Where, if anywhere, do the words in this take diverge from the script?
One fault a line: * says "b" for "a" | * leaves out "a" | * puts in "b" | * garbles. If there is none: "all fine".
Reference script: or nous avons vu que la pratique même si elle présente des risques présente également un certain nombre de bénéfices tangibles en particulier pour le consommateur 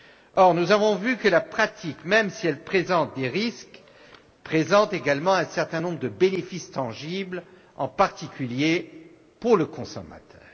all fine